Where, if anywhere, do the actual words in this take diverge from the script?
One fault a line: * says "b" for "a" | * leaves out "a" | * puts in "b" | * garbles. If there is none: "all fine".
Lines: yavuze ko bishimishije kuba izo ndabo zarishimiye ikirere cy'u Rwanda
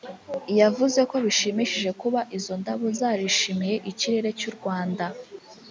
all fine